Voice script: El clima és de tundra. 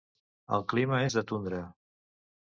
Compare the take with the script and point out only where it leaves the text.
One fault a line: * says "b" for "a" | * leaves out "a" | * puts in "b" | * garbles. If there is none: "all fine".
all fine